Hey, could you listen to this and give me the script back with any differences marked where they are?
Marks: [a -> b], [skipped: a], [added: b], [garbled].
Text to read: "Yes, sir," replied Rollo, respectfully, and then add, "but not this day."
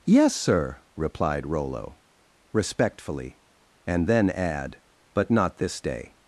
"Yes, sir," replied Rollo, respectfully, and then add, "but not this day."